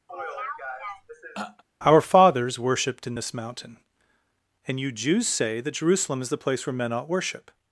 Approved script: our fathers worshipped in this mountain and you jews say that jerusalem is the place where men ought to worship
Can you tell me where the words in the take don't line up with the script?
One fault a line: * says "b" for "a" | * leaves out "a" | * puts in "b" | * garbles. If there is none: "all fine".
* leaves out "to"